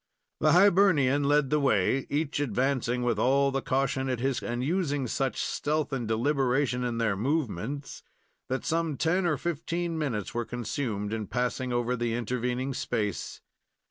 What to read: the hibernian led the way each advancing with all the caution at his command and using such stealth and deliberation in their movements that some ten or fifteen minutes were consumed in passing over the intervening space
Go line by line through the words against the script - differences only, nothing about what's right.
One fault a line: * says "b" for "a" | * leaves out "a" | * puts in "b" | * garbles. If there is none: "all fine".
* leaves out "command"